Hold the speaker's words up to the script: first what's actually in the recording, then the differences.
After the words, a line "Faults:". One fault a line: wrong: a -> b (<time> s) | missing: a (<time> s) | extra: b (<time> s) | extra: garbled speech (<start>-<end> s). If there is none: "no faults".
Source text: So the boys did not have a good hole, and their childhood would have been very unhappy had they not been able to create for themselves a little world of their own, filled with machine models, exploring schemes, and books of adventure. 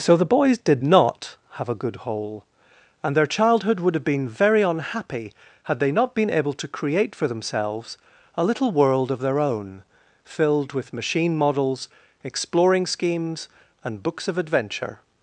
So the boys did not have a good hole, and their childhood would have been very unhappy had they not been able to create for themselves a little world of their own, filled with machine models, exploring schemes, and books of adventure.
Faults:
no faults